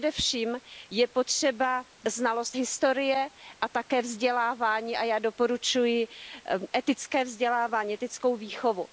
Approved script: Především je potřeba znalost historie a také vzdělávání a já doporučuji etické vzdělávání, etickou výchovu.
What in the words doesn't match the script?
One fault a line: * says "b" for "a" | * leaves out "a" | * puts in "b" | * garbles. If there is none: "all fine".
all fine